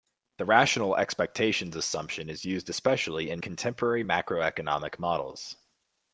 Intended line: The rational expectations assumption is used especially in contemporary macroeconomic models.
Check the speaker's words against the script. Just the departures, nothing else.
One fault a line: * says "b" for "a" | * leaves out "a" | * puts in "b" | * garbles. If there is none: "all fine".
all fine